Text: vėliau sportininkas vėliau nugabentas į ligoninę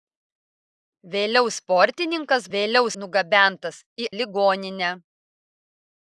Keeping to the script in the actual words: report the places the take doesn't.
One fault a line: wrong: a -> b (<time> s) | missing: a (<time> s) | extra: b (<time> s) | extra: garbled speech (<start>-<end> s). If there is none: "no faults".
no faults